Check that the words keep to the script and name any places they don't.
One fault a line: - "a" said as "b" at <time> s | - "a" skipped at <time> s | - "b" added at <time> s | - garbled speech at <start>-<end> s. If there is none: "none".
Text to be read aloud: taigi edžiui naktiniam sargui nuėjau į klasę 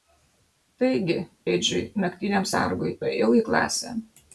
none